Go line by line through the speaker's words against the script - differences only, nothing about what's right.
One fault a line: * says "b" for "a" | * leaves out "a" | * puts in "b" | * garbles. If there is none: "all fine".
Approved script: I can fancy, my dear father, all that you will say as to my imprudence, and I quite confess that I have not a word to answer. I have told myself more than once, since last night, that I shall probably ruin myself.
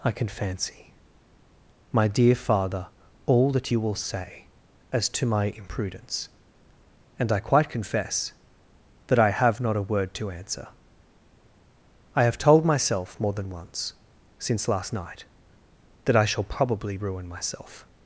all fine